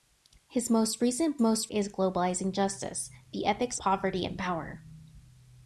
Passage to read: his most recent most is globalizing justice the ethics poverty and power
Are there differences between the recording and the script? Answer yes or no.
no